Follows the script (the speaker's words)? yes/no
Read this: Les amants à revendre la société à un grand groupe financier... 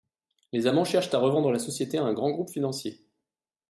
no